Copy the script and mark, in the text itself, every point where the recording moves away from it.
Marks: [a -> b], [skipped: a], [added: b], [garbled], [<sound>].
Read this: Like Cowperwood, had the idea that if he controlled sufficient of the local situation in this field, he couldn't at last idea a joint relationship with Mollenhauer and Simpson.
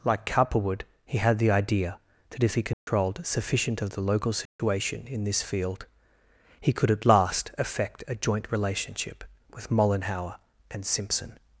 Like Cowperwood, [added: he] had the idea that if he controlled [dropout] sufficient of the local situation [dropout] in this field, he [couldn't -> could] at last [idea -> effect] a joint relationship with Mollenhauer and Simpson.